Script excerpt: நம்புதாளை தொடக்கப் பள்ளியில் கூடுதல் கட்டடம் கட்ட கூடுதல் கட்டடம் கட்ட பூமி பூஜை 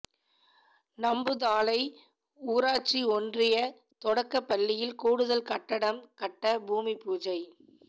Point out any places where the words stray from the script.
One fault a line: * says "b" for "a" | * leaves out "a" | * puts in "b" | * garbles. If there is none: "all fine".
* puts in "ஊராட்சி ஒன்றிய"
* leaves out "கூடுதல் கட்டடம் கட்ட"